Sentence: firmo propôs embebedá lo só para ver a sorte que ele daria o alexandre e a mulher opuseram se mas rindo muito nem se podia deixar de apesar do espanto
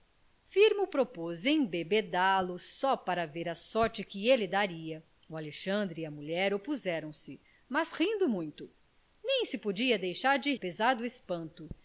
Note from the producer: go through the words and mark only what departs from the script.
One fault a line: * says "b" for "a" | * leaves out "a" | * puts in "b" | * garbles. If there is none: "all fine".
all fine